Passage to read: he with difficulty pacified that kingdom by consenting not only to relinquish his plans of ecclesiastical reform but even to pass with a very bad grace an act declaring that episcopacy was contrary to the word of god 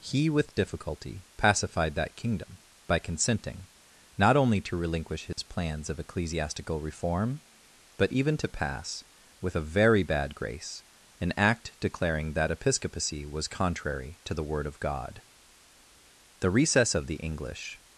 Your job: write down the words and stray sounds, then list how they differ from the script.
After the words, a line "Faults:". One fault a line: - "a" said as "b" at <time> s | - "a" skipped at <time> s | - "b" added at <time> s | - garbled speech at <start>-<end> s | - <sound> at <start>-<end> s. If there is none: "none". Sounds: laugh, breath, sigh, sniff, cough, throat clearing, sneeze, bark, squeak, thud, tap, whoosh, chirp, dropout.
he with difficulty pacified that kingdom by consenting not only to relinquish his plans of ecclesiastical reform but even to pass with a very bad grace an act declaring that episcopacy was contrary to the word of god the recess of the english
Faults:
- dropout at 5.3-5.4 s
- "the recess of the english" added at 16.4 s